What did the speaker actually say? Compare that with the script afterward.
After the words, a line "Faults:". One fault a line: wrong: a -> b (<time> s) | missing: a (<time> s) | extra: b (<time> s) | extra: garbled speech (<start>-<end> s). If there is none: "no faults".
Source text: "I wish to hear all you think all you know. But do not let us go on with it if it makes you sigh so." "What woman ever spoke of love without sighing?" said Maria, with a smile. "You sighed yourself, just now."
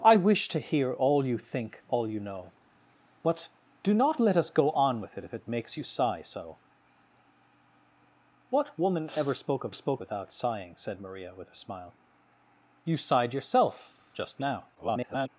"I wish to hear all you think all you know. But do not let us go on with it if it makes you sigh so." "What woman ever spoke of spoke without sighing?" said Maria, with a smile. "You sighed yourself, just now." [garbled]
Faults:
wrong: love -> spoke (9.7 s)
extra: garbled speech (14.7-15.3 s)